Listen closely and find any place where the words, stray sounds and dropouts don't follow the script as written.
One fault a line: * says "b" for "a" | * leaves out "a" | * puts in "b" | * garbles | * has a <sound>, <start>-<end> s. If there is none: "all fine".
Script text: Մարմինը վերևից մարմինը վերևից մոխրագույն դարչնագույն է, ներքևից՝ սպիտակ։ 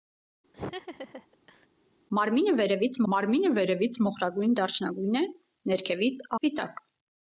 * has a laugh, 0.5-1.7 s